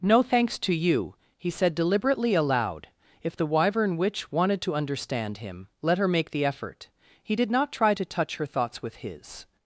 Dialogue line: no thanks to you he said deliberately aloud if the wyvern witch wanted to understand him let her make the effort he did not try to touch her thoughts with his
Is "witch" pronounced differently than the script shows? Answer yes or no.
no